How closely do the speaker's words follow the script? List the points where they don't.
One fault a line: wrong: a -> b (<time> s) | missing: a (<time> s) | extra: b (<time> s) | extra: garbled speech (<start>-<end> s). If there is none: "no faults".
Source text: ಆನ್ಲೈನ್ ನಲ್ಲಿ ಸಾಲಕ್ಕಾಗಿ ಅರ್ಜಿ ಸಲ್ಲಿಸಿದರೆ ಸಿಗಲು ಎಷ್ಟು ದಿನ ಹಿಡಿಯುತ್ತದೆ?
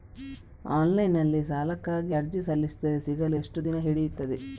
no faults